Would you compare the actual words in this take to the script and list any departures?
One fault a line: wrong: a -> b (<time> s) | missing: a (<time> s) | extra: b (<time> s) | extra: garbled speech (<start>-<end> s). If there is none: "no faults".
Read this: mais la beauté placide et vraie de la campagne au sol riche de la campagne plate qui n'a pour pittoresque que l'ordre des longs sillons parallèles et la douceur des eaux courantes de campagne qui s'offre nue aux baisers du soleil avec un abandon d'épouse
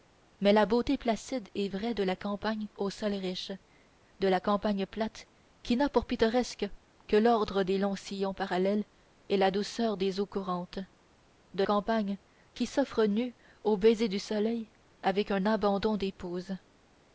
no faults